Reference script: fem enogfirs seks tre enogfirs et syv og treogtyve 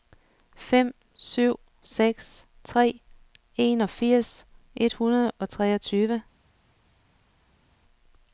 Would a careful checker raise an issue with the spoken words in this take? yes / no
yes